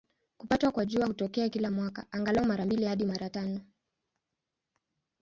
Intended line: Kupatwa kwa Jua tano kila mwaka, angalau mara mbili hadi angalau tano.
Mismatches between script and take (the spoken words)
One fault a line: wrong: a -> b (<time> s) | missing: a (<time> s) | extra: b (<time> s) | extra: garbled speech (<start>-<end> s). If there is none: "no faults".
wrong: tano -> hutokea (1.1 s)
wrong: angalau -> mara (3.1 s)